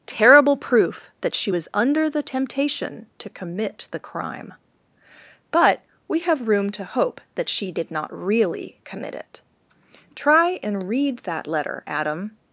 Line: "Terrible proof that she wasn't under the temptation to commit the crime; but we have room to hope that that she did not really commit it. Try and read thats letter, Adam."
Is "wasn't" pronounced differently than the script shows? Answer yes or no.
yes